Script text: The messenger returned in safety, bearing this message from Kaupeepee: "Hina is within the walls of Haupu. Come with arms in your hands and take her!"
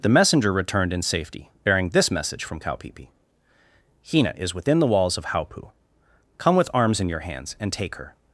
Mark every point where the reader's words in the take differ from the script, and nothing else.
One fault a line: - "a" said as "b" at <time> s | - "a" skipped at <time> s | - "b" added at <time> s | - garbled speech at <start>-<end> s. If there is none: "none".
none